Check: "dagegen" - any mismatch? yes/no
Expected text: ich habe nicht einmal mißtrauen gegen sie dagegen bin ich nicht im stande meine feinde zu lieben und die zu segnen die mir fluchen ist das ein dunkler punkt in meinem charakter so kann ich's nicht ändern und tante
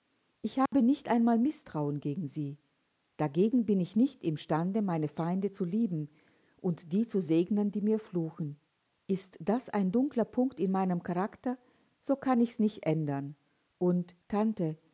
no